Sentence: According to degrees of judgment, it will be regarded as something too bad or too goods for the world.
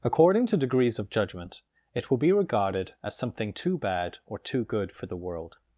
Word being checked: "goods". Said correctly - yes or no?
no